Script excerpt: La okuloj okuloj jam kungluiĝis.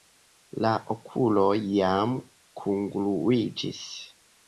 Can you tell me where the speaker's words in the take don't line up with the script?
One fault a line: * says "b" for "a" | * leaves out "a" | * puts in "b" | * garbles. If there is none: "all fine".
* leaves out "okuloj"